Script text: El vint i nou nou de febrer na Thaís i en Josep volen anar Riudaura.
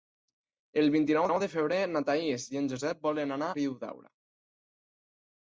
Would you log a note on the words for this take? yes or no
no